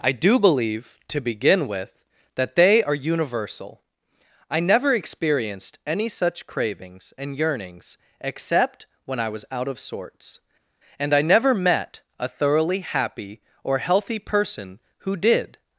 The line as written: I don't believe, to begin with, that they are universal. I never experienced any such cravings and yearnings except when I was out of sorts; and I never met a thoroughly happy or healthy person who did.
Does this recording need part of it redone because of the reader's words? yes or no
yes